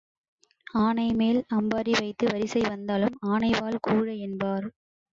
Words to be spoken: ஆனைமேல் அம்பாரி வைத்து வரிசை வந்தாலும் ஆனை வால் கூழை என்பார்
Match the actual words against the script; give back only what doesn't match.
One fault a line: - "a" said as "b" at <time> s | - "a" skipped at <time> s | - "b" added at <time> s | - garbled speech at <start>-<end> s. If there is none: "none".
none